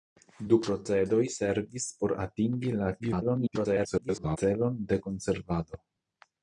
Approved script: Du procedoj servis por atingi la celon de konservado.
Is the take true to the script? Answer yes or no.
no